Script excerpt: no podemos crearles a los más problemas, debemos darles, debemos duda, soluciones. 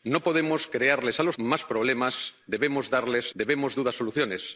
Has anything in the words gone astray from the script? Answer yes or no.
no